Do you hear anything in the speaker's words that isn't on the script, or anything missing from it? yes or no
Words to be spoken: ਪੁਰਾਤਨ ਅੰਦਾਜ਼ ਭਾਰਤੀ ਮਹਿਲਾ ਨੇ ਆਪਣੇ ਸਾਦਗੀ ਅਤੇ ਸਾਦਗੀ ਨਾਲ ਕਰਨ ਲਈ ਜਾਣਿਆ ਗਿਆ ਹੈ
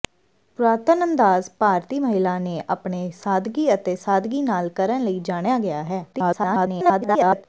yes